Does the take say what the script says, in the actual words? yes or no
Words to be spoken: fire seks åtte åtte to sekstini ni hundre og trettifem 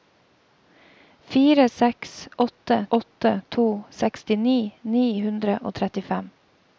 yes